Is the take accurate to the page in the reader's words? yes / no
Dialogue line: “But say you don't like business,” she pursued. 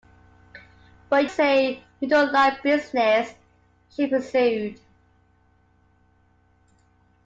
yes